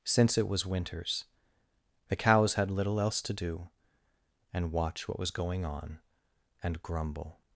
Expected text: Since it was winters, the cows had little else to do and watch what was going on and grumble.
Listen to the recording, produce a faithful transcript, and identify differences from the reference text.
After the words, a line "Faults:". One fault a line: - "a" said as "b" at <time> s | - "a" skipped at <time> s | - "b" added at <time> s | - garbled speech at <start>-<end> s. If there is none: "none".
Since it was winters, the cows had little else to do and watch what was going on and grumble.
Faults:
none